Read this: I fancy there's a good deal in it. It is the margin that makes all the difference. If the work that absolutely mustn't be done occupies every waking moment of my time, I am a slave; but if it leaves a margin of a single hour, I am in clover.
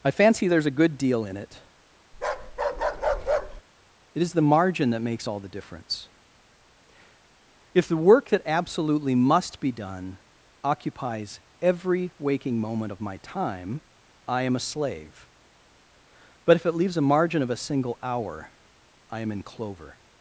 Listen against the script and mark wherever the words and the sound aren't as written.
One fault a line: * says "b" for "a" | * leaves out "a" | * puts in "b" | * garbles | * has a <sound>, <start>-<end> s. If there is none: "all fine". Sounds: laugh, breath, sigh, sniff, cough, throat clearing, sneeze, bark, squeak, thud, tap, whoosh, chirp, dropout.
* has a bark, 2.1-3.6 s
* says "must" for "mustn't"